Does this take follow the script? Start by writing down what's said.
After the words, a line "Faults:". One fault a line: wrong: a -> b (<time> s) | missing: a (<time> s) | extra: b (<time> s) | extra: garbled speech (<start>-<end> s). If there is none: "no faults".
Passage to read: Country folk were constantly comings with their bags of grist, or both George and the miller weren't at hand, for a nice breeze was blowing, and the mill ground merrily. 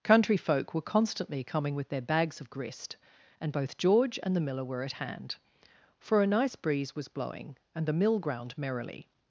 Country folk were constantly coming with their bags of grist, and both George and the miller were at hand, for a nice breeze was blowing, and the mill ground merrily.
Faults:
wrong: comings -> coming (1.4 s)
wrong: or -> and (3.4 s)
wrong: weren't -> were (4.7 s)